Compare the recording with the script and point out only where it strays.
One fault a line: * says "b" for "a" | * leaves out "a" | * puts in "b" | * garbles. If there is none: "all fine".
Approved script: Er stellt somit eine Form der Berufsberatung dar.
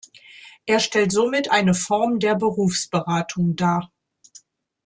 all fine